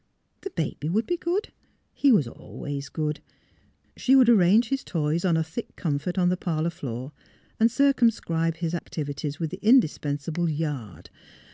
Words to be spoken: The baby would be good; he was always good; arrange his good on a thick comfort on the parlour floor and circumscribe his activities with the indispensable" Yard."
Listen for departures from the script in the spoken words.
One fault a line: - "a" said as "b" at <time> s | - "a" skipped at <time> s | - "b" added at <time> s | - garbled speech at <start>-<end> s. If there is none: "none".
- "she would" added at 4.0 s
- "good" said as "toys" at 4.8 s